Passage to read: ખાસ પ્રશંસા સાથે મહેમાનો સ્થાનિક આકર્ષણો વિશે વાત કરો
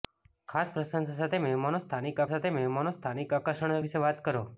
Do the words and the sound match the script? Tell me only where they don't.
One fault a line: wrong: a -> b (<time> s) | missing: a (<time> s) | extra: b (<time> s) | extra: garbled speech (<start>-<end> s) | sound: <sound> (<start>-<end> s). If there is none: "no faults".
extra: સાથે મહેમાનો સ્થાનિક (2.3 s)